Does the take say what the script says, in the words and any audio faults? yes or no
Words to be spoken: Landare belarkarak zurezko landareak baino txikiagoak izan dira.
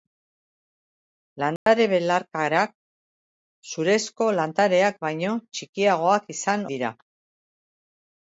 no